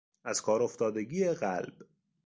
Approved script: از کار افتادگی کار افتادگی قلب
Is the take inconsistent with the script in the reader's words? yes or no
yes